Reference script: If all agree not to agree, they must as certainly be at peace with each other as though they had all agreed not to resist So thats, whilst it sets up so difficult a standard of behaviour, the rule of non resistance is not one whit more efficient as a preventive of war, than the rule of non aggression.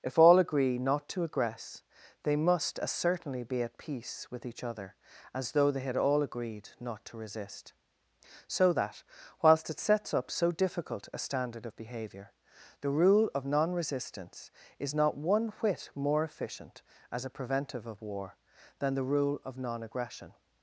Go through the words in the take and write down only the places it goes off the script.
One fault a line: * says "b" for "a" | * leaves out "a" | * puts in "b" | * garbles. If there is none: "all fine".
* says "aggress" for "agree"
* says "that" for "thats"